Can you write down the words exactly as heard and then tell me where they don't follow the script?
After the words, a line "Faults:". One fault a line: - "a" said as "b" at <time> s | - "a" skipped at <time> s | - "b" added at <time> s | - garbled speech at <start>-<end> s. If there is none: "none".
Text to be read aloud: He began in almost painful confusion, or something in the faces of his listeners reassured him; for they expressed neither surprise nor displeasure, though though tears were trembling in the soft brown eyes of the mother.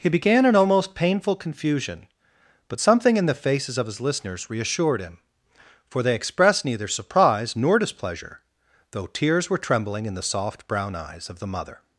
He began in almost painful confusion, but something in the faces of his listeners reassured him; for they expressed neither surprise nor displeasure, though tears were trembling in the soft brown eyes of the mother.
Faults:
- "or" said as "but" at 2.7 s
- "though" skipped at 9.1 s